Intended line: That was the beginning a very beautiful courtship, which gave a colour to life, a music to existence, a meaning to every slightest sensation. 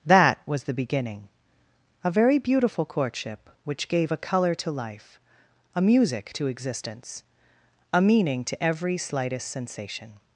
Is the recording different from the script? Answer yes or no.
no